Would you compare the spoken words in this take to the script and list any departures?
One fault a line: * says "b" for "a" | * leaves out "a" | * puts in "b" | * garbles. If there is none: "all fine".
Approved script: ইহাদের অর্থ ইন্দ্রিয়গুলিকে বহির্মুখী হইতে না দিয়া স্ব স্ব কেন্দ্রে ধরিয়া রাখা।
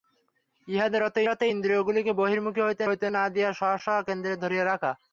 * puts in "অর্থ"
* puts in "হইতে"